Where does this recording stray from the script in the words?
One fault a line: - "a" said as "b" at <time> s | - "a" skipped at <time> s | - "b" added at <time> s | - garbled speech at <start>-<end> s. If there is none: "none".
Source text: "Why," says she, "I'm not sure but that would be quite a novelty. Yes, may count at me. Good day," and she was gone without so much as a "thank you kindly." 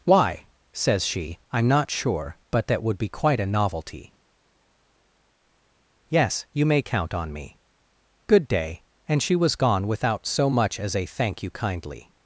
- "you" added at 6.5 s
- "at" said as "on" at 7.1 s